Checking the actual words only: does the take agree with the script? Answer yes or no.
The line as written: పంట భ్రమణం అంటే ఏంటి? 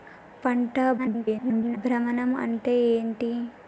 no